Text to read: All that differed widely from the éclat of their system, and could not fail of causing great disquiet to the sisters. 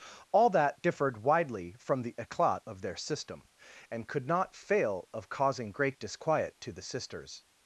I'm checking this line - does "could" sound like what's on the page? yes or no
yes